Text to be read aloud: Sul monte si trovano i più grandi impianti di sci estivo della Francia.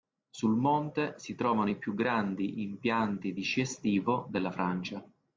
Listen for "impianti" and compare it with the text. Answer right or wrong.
right